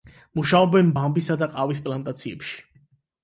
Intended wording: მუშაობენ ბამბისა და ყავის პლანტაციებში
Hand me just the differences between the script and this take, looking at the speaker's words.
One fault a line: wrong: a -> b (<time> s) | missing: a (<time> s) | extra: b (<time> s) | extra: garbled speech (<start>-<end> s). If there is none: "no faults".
no faults